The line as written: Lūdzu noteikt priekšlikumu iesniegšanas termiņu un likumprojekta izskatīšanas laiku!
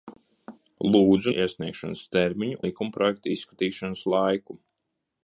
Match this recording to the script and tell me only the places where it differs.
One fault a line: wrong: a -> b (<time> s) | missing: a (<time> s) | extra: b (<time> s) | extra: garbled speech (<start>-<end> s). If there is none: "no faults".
missing: noteikt priekšlikumu (1.3 s)
missing: un (2.6 s)